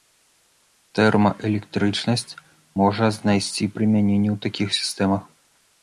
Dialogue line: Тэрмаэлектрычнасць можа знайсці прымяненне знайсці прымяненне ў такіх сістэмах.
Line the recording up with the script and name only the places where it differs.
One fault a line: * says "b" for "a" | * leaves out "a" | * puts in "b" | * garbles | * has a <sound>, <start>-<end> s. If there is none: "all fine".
* leaves out "знайсці прымяненне"